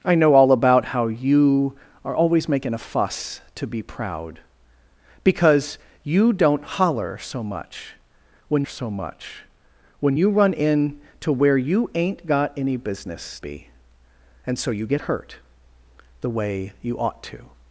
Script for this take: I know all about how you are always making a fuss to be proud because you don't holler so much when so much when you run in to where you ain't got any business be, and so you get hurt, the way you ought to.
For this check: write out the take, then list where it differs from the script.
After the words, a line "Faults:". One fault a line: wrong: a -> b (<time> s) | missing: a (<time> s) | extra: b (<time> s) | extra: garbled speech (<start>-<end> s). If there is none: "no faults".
I know all about how you are always making a fuss to be proud because you don't holler so much when so much when you run in to where you ain't got any business be, and so you get hurt, the way you ought to.
Faults:
no faults